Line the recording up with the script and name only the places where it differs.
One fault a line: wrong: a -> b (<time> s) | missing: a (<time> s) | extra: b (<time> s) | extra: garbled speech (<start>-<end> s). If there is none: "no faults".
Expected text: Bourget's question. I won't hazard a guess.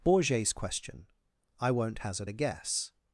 no faults